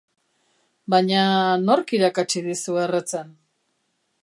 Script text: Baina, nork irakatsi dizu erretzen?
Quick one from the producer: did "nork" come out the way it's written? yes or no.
yes